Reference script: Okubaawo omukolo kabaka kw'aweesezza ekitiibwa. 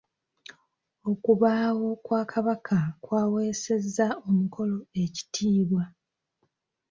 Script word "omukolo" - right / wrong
wrong